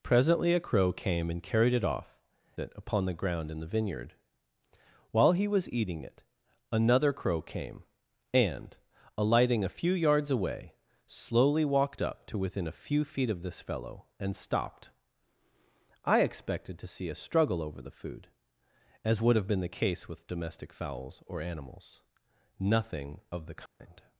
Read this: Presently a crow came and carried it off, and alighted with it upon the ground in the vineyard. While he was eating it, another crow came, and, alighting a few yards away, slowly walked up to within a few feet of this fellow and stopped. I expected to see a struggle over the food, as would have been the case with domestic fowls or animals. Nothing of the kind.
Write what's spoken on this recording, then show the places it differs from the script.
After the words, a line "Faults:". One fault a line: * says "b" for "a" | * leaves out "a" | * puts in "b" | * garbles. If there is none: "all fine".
Presently a crow came and carried it off, it upon the ground in the vineyard. While he was eating it, another crow came, and, alighting a few yards away, slowly walked up to within a few feet of this fellow and stopped. I expected to see a struggle over the food, as would have been the case with domestic fowls or animals. Nothing of the kind.
Faults:
* leaves out "and alighted with"